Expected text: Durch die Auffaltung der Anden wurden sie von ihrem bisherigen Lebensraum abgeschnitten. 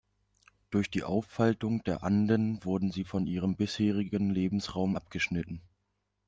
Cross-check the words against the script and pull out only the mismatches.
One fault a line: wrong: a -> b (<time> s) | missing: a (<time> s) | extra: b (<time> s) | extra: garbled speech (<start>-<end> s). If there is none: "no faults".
no faults